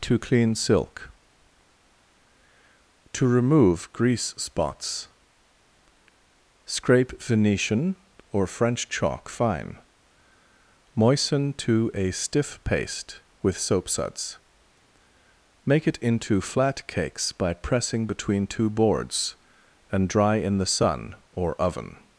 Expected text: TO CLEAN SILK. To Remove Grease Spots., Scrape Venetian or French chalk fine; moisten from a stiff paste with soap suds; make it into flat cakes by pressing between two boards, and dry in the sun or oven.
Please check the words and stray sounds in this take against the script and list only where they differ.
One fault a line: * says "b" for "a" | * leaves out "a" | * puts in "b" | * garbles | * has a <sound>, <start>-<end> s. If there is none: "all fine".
* says "to" for "from"